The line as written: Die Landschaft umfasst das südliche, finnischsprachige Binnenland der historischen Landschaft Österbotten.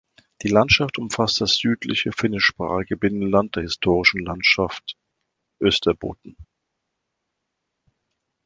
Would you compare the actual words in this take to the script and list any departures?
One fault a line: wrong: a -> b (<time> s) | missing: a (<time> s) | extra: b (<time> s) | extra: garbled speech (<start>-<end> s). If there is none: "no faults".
no faults